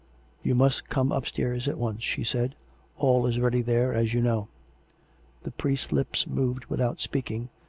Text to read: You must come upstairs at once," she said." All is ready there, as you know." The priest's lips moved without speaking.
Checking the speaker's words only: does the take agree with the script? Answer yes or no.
yes